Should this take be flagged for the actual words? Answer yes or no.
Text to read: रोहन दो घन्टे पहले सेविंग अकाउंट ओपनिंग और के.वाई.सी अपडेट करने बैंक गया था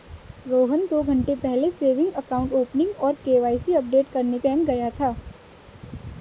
no